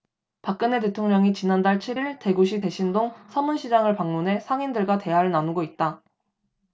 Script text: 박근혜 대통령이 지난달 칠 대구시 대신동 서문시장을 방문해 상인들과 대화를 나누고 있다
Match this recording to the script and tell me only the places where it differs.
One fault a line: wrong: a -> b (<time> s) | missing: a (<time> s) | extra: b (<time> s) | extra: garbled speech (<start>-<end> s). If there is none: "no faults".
extra: 일 (1.9 s)